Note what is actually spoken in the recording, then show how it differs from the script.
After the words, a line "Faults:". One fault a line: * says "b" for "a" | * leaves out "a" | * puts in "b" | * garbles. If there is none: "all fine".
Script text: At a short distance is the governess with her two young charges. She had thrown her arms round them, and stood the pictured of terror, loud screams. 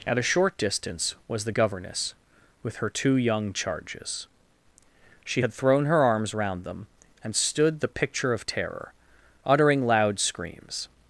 At a short distance was the governess with her two young charges. She had thrown her arms round them, and stood the picture of terror, uttering loud screams.
Faults:
* says "was" for "is"
* says "picture" for "pictured"
* puts in "uttering"